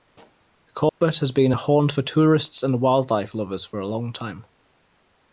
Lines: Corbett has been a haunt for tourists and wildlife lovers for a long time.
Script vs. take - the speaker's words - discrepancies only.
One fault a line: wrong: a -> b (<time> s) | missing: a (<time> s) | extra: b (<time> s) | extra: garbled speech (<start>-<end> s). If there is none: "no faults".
no faults